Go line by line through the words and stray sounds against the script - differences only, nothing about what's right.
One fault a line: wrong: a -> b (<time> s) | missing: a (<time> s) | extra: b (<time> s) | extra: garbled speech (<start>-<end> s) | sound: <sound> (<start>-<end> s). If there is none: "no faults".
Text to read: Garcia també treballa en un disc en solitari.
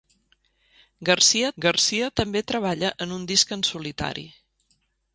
extra: garcia (1.7 s)